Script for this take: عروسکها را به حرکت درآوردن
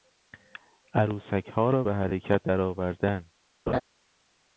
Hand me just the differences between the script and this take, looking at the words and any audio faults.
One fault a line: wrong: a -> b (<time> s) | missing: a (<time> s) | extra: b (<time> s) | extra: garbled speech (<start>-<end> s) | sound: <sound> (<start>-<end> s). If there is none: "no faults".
sound: laugh (3.7-3.8 s)